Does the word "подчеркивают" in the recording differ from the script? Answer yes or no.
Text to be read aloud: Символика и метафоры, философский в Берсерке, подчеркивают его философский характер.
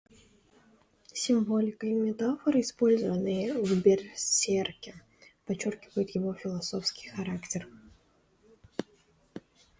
no